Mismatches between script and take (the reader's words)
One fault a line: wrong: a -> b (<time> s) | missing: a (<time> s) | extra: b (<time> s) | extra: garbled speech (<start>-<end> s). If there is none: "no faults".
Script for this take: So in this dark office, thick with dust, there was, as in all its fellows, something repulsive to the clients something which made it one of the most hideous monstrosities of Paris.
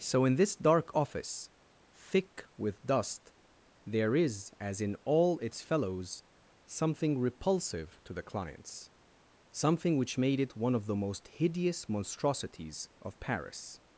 wrong: was -> is (4.2 s)